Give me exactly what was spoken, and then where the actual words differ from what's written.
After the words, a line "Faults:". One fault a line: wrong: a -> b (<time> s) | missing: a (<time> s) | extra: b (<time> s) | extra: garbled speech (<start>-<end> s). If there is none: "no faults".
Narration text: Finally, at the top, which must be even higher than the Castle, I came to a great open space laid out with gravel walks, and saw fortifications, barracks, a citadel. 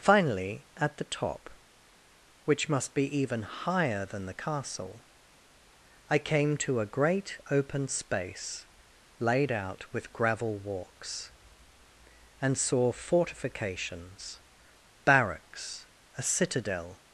Finally, at the top, which must be even higher than the Castle, I came to a great open space laid out with gravel walks, and saw fortifications, barracks, a citadel.
Faults:
no faults